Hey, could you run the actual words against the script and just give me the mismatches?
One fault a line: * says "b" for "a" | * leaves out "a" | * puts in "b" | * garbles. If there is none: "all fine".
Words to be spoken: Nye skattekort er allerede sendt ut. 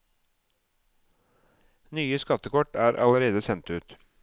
all fine